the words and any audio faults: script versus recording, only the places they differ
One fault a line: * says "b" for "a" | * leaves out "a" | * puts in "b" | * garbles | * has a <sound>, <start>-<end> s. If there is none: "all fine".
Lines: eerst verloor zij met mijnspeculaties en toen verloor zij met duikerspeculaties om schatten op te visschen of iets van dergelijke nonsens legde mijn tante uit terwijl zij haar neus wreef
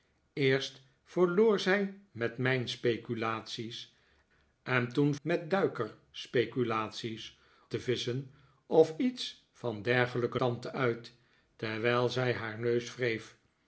* leaves out "verloor zij"
* leaves out "om schatten op"
* leaves out "nonsens legde mijn"